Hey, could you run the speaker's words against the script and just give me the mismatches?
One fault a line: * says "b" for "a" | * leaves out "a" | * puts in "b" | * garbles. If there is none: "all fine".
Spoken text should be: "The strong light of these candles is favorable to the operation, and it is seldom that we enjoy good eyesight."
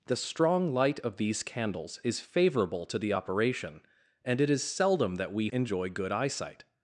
all fine